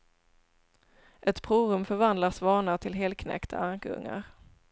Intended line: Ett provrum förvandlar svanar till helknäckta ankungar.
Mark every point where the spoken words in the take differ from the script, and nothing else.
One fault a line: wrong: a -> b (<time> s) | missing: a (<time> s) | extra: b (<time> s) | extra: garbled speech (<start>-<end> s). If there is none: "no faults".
no faults